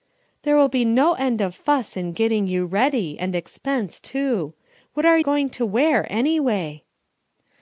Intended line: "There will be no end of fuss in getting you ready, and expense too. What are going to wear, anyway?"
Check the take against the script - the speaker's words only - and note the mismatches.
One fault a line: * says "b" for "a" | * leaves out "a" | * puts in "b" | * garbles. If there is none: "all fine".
all fine